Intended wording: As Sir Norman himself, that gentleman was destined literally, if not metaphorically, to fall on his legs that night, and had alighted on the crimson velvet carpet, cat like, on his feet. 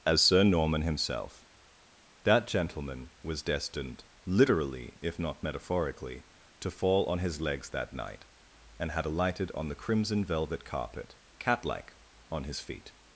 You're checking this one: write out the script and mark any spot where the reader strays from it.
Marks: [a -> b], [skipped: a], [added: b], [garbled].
As Sir Norman himself, that gentleman was destined literally, if not metaphorically, to fall on his legs that night, and had alighted on the crimson velvet carpet, cat like, on his feet.